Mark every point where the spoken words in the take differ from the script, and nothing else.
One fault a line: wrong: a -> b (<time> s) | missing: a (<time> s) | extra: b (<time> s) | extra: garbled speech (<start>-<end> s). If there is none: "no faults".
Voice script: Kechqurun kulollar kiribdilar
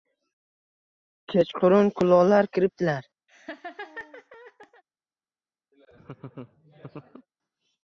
no faults